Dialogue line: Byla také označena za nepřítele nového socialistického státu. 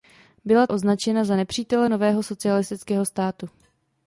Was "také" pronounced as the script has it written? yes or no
no